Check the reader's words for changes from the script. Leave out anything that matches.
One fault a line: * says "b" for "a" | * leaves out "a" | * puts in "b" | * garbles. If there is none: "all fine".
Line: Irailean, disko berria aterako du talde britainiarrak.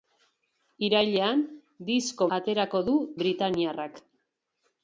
* leaves out "berria"
* leaves out "talde"